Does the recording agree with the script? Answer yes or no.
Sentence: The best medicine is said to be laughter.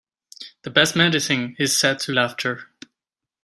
no